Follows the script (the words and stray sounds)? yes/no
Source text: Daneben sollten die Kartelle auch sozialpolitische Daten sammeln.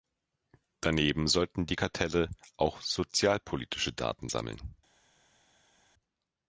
yes